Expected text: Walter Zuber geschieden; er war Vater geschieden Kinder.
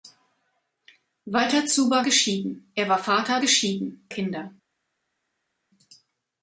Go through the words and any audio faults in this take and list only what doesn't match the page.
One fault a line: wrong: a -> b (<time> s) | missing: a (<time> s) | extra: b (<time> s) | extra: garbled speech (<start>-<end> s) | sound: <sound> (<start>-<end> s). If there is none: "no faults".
no faults